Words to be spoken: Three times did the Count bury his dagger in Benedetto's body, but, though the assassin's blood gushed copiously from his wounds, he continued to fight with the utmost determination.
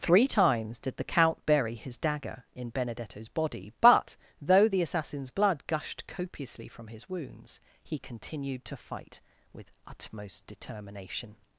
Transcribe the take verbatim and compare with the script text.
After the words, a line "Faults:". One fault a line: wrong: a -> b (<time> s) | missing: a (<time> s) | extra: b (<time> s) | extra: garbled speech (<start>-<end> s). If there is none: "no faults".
Three times did the Count bury his dagger in Benedetto's body, but, though the assassin's blood gushed copiously from his wounds, he continued to fight with utmost determination.
Faults:
missing: the (9.7 s)